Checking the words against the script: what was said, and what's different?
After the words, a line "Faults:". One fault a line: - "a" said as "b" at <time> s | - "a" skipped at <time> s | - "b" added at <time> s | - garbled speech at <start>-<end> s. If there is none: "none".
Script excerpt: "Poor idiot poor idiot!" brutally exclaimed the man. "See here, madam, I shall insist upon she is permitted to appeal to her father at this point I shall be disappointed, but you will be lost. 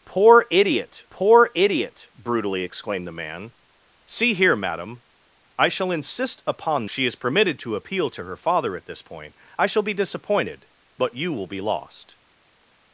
"Poor idiot poor idiot!" brutally exclaimed the man. "See here, madam, I shall insist upon she is permitted to appeal to her father at this point I shall be disappointed, but you will be lost.
Faults:
none